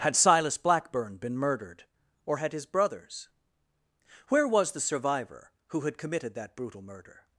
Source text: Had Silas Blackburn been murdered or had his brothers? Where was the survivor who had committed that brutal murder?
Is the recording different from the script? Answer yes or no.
no